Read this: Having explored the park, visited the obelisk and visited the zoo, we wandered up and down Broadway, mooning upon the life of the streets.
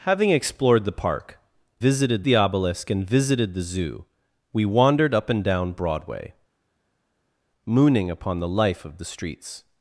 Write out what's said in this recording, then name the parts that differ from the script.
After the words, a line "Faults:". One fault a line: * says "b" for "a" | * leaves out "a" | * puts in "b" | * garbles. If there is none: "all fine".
Having explored the park, visited the obelisk and visited the zoo, we wandered up and down Broadway, mooning upon the life of the streets.
Faults:
all fine